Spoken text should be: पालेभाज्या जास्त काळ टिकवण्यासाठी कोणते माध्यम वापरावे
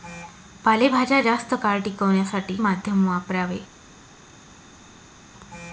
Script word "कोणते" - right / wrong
wrong